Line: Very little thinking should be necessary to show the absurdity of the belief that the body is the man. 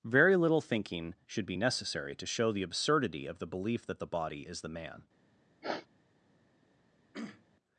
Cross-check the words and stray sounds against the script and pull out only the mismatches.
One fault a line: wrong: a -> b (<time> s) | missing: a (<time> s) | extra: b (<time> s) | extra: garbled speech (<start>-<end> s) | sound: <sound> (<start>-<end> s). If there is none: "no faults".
sound: sniff (5.6-5.9 s)
sound: throat clearing (7.1-7.4 s)